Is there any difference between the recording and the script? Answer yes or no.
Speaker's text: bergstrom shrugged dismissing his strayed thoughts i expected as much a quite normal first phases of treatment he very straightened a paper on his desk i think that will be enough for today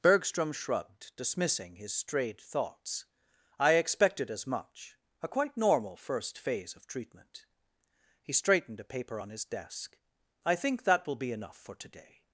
yes